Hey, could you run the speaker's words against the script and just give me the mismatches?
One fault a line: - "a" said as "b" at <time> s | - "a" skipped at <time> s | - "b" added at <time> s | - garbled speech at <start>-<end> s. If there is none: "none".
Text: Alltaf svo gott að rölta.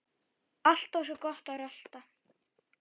none